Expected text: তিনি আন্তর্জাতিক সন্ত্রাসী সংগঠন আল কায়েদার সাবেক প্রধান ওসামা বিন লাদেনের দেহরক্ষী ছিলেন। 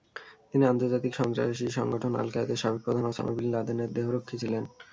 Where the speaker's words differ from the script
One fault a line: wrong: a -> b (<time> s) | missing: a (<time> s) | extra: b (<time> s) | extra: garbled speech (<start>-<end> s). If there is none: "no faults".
no faults